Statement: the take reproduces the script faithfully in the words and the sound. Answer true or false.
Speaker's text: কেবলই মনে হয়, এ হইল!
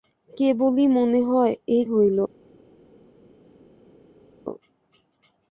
true